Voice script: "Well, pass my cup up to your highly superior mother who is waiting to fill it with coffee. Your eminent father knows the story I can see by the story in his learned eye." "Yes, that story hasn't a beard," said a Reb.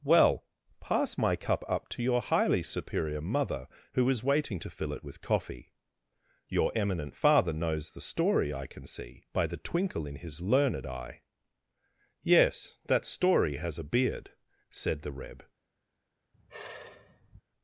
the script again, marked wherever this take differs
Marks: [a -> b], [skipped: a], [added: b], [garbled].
"Well, pass my cup up to your highly superior mother who is waiting to fill it with coffee. Your eminent father knows the story I can see by the [story -> twinkle] in his learned eye." "Yes, that story [hasn't -> has] a beard," said [a -> the] Reb.